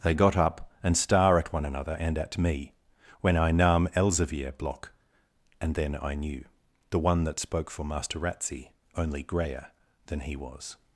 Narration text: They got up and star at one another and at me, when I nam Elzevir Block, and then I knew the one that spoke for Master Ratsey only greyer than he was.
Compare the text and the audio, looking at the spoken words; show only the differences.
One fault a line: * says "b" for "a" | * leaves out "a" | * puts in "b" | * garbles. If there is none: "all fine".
all fine